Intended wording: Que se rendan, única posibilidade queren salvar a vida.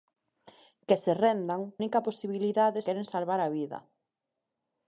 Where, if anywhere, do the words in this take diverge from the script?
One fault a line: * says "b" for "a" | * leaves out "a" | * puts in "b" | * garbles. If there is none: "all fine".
all fine